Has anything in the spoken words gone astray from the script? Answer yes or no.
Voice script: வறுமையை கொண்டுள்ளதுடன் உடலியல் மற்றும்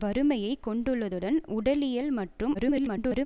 yes